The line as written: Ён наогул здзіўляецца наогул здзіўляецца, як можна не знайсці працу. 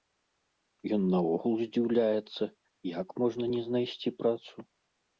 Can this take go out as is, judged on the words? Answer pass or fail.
fail